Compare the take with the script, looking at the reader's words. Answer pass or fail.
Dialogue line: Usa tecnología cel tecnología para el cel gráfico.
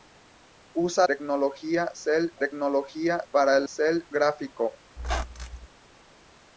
pass